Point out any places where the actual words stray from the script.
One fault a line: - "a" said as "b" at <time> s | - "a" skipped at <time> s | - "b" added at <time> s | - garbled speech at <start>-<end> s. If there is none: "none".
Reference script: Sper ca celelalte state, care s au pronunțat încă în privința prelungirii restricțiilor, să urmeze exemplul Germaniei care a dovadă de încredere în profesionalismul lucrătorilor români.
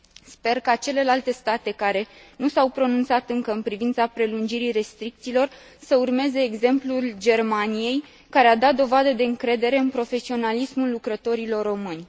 - "nu" added at 2.4 s
- "dat" added at 8.6 s